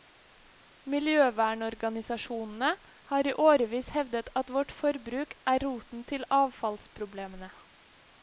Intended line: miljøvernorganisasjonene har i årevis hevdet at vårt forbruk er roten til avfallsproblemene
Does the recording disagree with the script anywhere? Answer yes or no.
no